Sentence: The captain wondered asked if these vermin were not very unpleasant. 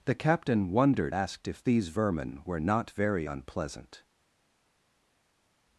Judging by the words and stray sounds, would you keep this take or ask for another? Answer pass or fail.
pass